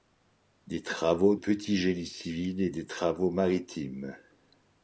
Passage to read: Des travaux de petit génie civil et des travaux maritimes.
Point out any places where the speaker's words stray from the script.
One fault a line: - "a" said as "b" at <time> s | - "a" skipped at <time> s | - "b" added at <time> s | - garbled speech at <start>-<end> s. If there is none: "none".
- "de" skipped at 1.4 s